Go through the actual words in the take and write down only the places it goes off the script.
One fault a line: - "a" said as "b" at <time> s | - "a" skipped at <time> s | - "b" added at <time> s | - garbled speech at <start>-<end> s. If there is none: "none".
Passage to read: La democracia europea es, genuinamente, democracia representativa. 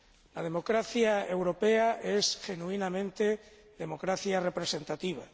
none